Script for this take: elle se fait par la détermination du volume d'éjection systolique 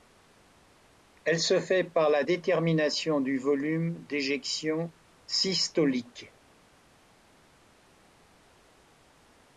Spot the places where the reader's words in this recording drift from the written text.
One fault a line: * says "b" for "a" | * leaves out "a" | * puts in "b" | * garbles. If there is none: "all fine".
all fine